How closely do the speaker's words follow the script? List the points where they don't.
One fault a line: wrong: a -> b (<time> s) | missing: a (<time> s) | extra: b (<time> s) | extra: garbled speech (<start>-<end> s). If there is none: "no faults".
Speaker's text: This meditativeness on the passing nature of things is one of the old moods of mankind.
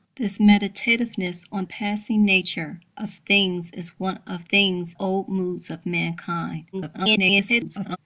missing: the (1.6 s)
wrong: the -> things (4.5 s)
extra: garbled speech (6.7-8.0 s)